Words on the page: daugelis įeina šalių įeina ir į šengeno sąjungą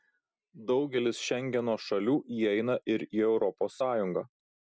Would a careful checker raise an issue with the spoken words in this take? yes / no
yes